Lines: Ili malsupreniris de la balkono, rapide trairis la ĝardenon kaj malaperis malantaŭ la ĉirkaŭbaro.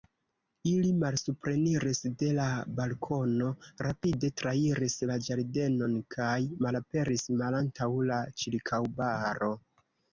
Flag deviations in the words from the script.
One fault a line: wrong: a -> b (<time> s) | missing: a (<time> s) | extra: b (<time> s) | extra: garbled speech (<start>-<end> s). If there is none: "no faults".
no faults